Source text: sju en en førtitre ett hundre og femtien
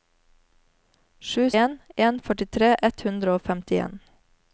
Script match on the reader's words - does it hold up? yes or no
yes